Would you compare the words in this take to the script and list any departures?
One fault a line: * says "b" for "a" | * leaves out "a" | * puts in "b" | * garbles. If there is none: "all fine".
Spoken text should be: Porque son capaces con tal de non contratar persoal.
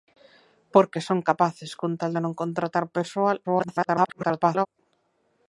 * garbles